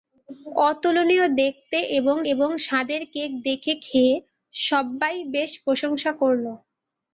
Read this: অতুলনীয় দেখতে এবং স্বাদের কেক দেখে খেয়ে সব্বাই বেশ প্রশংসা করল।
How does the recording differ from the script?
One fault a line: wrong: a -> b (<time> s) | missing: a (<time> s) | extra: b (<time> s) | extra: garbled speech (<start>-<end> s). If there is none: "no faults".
extra: এবং (2.3 s)